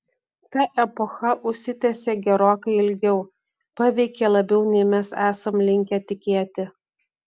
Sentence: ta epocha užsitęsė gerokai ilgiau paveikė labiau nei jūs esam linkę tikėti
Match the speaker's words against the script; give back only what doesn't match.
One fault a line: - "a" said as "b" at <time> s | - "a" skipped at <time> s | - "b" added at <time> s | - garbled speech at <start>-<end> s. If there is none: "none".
- "jūs" said as "mes" at 5.0 s